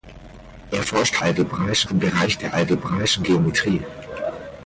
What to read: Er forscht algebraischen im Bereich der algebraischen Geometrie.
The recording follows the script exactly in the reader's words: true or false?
true